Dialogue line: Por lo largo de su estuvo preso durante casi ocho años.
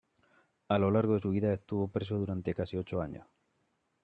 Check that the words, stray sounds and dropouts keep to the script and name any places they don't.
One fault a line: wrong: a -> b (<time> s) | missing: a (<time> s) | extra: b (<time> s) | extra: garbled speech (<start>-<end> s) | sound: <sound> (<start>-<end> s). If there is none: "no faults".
wrong: Por -> A (0.7 s)
extra: vida (1.3 s)